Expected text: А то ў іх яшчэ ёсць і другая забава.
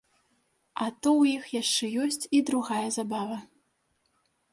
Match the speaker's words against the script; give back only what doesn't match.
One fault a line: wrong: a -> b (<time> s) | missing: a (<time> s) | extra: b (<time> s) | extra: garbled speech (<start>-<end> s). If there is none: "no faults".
no faults